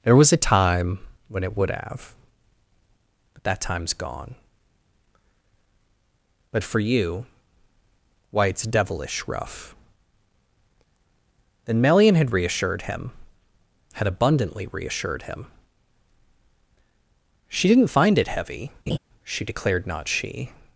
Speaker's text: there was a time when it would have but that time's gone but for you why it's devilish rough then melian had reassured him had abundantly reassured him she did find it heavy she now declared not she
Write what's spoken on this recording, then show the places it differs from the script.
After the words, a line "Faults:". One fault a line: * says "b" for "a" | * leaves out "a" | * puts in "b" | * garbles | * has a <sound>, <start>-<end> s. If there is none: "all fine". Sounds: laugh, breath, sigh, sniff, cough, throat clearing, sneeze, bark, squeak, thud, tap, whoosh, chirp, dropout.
there was a time when it would have but that time's gone but for you why it's devilish rough then melian had reassured him had abundantly reassured him she didn't find it heavy she declared not she
Faults:
* says "didn't" for "did"
* has a laugh, 18.9-19.0 s
* leaves out "now"